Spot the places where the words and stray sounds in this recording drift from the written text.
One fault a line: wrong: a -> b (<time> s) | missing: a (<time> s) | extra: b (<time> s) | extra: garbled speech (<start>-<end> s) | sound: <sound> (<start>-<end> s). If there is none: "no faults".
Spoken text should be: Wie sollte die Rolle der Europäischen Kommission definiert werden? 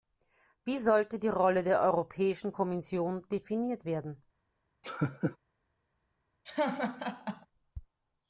sound: laugh (4.8-5.4 s)
sound: laugh (6.5-7.5 s)